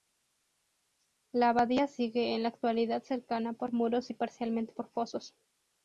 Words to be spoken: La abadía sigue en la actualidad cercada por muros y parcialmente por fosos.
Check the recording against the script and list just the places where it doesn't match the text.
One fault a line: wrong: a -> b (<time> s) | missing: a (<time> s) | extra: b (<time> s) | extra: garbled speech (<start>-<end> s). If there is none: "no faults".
no faults